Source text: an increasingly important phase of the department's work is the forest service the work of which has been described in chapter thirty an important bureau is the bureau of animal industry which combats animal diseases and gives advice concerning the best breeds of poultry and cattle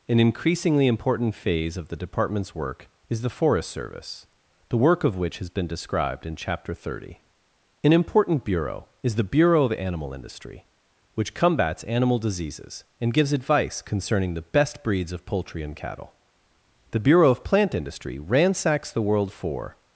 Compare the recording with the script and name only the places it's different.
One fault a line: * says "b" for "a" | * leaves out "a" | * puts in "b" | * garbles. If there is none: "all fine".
* puts in "the bureau of plant industry ransacks the world for"